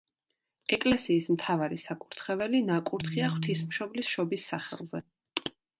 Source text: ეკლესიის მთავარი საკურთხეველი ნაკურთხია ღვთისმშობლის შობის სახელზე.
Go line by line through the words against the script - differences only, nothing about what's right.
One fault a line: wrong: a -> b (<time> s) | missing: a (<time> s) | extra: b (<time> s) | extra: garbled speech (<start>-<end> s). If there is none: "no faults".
no faults